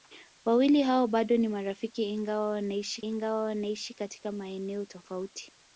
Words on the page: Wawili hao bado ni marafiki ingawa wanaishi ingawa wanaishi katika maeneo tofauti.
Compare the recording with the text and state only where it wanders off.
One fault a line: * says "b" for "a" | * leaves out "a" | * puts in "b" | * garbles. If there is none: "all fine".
all fine